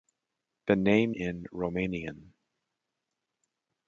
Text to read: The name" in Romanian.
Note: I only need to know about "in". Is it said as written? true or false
true